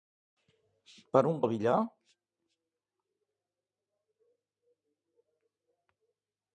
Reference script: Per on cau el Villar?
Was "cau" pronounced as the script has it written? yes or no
no